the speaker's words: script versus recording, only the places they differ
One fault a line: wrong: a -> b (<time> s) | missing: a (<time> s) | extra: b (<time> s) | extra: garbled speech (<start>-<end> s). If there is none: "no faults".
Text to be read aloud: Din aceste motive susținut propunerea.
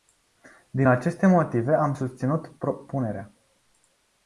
extra: am (1.7 s)